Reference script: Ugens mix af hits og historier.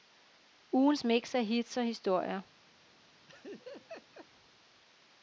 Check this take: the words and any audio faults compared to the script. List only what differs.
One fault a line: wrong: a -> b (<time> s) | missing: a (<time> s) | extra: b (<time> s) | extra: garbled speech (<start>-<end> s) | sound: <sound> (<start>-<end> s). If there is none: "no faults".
sound: laugh (3.3-4.3 s)